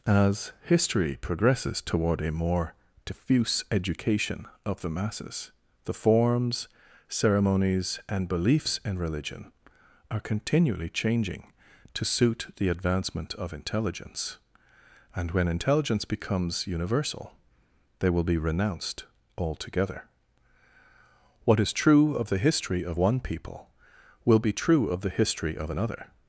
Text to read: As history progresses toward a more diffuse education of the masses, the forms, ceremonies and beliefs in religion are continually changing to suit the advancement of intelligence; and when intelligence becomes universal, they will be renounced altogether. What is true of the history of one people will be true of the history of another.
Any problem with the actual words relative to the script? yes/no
no